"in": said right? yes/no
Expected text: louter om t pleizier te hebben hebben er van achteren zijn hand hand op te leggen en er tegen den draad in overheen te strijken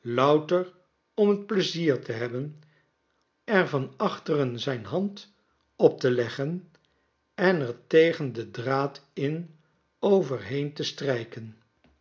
yes